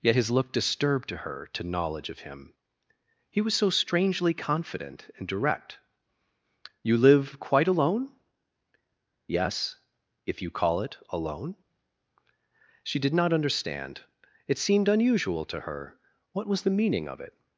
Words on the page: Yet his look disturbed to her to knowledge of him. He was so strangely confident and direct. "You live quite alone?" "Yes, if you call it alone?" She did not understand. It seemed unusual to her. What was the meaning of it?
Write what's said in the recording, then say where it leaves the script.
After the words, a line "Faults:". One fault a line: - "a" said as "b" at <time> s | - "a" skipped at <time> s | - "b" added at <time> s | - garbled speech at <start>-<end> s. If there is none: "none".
Yet his look disturbed to her to knowledge of him. He was so strangely confident and direct. "You live quite alone?" "Yes, if you call it alone?" She did not understand. It seemed unusual to her. What was the meaning of it?
Faults:
none